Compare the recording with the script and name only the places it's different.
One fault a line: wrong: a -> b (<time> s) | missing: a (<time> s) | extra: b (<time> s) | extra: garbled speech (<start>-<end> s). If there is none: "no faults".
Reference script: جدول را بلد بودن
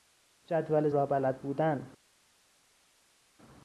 no faults